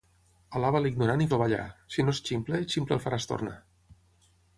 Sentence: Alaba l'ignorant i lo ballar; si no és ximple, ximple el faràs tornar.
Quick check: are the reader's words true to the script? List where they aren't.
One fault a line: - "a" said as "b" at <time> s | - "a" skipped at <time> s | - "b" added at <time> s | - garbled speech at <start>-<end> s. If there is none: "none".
none